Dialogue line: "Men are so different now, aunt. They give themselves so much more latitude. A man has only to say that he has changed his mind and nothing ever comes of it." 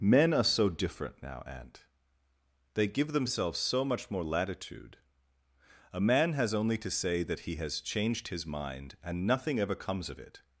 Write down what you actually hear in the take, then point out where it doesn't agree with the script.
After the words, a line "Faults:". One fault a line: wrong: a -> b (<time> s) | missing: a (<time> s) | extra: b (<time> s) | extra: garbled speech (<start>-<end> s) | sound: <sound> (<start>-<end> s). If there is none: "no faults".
"Men are so different now, aunt. They give themselves so much more latitude. A man has only to say that he has changed his mind and nothing ever comes of it."
Faults:
no faults